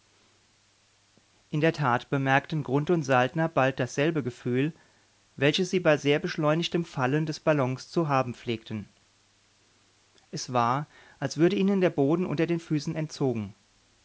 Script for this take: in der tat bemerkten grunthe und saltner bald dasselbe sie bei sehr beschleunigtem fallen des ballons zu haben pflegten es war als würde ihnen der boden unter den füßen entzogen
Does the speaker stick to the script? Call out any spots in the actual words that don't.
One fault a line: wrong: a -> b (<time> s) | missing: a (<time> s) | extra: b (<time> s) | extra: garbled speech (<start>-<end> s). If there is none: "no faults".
extra: gefühl welches (4.2 s)